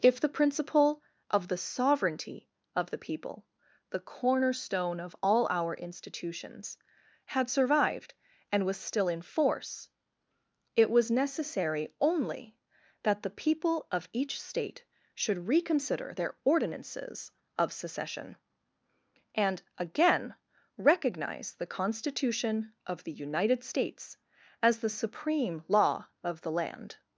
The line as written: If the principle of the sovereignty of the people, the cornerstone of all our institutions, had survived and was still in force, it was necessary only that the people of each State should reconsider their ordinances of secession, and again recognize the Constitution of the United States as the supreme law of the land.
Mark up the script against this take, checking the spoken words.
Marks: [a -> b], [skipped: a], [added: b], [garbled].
If the principle of the sovereignty of the people, the cornerstone of all our institutions, had survived and was still in force, it was necessary only that the people of each State should reconsider their ordinances of secession, and again recognize the Constitution of the United States as the supreme law of the land.